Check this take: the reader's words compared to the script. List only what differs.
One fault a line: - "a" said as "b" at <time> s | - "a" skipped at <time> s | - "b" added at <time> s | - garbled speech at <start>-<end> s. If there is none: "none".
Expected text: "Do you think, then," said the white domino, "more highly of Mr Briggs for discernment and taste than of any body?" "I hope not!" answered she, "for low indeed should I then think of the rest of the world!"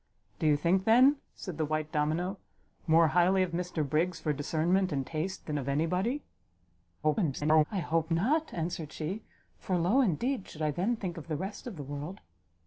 - garbled speech at 7.0-7.6 s